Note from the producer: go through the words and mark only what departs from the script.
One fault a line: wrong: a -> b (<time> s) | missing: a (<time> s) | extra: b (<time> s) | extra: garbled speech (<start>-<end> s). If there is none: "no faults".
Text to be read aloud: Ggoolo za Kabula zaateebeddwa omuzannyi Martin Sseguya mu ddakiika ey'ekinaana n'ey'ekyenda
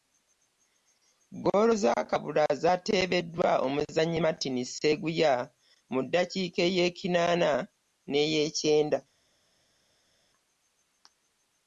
no faults